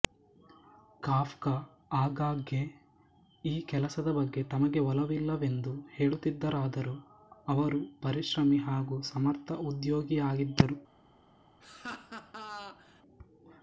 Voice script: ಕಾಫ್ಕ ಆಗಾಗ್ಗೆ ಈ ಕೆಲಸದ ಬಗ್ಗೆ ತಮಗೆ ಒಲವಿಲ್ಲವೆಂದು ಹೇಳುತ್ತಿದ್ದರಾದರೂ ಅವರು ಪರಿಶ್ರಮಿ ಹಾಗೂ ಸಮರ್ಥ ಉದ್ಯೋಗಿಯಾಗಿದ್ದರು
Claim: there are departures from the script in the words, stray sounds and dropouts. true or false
true